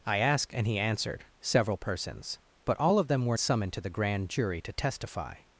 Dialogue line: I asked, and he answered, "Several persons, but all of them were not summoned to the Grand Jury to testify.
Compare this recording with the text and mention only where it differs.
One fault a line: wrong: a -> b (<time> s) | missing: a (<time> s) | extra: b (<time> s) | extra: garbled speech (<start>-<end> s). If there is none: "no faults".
missing: not (3.4 s)